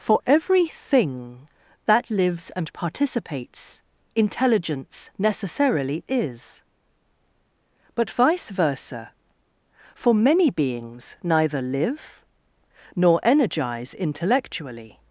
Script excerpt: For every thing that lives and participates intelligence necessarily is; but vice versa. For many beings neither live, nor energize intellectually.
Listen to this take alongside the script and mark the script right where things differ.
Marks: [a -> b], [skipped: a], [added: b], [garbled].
For every thing that lives and participates intelligence necessarily is; but vice versa. For many beings neither live, nor energize intellectually.